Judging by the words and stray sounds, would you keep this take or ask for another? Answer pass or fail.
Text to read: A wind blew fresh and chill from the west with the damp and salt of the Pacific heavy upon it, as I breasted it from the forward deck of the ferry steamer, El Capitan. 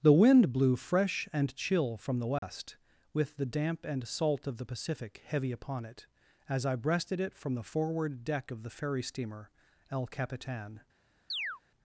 fail